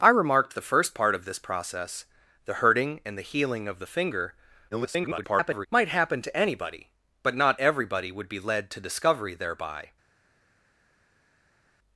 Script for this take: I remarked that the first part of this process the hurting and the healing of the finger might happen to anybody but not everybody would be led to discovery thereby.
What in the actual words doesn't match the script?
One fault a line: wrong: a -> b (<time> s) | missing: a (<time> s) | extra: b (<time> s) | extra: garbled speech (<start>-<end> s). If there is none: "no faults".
missing: that (0.6 s)
extra: garbled speech (4.7-5.7 s)